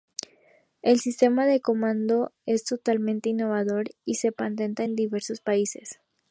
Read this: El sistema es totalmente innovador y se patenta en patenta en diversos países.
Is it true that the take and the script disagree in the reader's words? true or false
true